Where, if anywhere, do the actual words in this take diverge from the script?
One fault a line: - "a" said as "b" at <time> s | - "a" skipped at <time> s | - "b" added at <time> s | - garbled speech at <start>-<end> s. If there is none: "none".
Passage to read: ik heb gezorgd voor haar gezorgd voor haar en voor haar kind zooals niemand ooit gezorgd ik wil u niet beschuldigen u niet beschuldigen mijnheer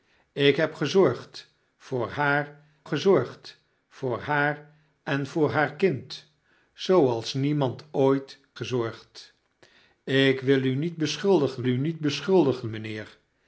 none